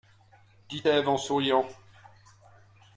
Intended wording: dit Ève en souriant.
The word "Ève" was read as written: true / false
true